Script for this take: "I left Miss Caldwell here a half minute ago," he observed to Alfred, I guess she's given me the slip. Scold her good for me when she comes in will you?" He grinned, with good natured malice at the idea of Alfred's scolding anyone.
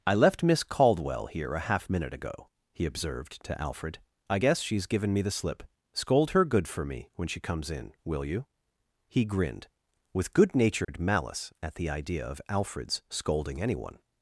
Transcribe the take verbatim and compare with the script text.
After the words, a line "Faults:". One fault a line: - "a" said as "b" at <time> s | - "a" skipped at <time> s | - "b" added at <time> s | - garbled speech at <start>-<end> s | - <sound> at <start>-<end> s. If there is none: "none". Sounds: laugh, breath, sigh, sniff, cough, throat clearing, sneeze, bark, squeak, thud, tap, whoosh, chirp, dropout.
"I left Miss Caldwell here a half minute ago," he observed to Alfred, I guess she's given me the slip. Scold her good for me when she comes in will you?" He grinned, with good natured malice at the idea of Alfred's scolding anyone.
Faults:
- dropout at 10.8-10.9 s